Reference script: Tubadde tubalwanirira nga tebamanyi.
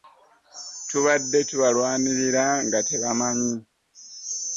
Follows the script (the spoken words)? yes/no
yes